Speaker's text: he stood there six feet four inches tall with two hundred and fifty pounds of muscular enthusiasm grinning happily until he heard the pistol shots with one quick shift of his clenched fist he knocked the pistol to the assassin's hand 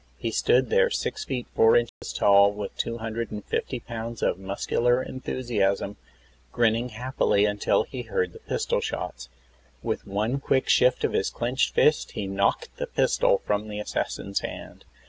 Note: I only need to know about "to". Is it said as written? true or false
false